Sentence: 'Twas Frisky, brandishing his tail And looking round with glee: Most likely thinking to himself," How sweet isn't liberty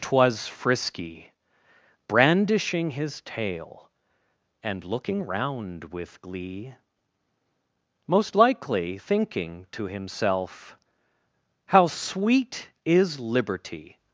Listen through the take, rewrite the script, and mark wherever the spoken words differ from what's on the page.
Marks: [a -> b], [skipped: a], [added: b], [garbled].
'Twas Frisky, brandishing his tail And looking round with glee: Most likely thinking to himself," How sweet [isn't -> is] liberty